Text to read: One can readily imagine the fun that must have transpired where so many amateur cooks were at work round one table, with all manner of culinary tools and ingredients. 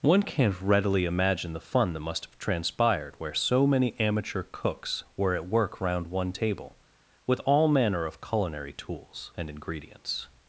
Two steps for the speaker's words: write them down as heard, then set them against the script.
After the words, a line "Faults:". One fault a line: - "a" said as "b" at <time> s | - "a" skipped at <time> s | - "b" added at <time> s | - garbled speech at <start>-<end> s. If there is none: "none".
One can't readily imagine the fun that must have transpired where so many amateur cooks were at work round one table, with all manner of culinary tools and ingredients.
Faults:
- "can" said as "can't" at 0.2 s